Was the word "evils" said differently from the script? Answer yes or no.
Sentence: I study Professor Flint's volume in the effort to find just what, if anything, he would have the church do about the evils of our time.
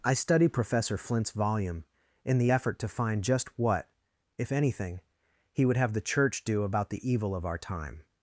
yes